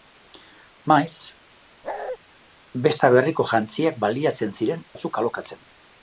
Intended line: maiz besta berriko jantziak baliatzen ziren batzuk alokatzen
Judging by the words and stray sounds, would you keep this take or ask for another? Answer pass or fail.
fail